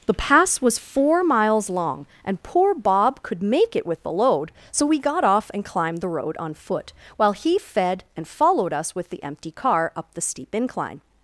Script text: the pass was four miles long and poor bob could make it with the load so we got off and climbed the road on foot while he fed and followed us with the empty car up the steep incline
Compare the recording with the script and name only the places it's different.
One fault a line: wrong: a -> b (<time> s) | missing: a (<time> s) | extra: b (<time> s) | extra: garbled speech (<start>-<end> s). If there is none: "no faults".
no faults